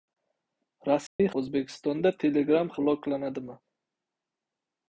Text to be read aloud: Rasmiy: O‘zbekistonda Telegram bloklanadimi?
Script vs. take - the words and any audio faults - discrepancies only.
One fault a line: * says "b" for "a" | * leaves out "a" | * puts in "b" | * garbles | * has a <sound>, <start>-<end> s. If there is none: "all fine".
* has a dropout, 1.1-1.2 s